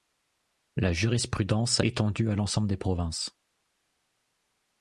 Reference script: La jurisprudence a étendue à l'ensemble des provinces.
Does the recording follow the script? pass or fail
pass